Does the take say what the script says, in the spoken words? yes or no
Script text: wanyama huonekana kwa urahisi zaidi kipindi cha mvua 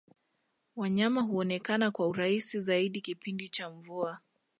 yes